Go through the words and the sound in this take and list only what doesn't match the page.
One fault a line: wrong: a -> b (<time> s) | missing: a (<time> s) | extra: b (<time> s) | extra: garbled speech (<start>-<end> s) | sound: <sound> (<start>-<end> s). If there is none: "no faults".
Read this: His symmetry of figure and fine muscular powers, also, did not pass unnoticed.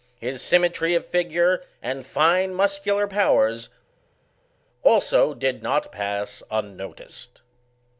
no faults